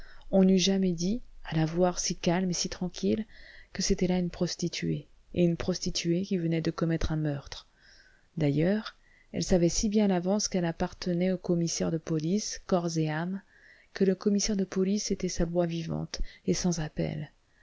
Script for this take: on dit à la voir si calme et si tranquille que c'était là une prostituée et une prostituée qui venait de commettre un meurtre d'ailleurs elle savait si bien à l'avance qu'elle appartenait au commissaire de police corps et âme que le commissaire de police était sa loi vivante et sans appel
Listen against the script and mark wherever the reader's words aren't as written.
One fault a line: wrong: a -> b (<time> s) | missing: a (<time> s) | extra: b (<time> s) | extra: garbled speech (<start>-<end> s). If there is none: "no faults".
extra: n'eût jamais (0.4 s)